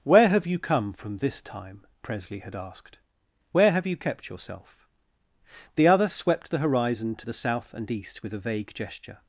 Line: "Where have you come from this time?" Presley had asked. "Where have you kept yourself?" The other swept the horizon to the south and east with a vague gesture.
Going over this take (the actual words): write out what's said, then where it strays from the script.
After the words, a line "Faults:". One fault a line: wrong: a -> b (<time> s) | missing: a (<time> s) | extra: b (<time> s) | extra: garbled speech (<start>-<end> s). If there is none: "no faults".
"Where have you come from this time?" Presley had asked. "Where have you kept yourself?" The other swept the horizon to the south and east with a vague gesture.
Faults:
no faults